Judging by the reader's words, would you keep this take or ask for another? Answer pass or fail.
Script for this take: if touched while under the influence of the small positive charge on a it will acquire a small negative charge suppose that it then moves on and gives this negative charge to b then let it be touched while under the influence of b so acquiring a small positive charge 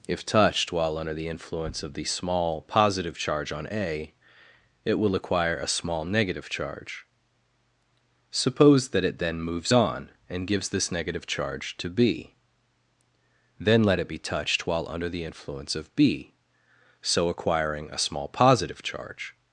pass